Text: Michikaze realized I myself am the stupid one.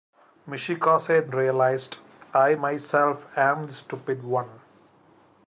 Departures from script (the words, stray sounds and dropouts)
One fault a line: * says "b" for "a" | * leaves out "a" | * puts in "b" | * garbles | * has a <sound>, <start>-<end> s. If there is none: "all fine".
all fine